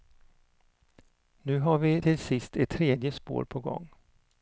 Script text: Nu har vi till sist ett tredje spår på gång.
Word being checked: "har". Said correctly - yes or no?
yes